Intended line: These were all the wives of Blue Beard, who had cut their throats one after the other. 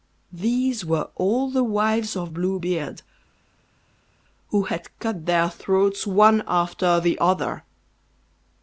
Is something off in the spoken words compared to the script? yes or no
no